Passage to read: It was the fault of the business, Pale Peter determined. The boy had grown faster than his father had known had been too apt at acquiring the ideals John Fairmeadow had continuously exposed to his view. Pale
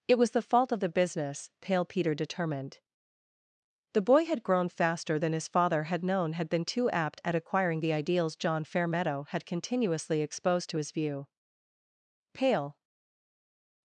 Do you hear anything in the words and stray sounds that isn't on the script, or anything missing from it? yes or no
no